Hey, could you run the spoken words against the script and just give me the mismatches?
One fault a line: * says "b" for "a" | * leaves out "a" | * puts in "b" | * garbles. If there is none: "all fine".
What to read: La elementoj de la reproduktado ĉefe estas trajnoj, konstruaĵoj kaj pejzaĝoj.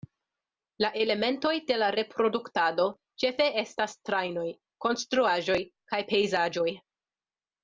all fine